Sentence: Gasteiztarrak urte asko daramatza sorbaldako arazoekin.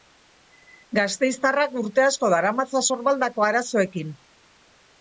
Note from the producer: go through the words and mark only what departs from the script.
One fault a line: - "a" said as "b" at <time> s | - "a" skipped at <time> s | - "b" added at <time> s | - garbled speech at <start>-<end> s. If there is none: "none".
none